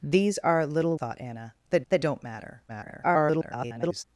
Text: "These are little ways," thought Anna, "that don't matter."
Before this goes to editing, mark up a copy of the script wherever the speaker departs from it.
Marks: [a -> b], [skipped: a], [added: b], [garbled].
"These are little [skipped: ways,"] thought Anna, "that [added: that] don't matter." [garbled]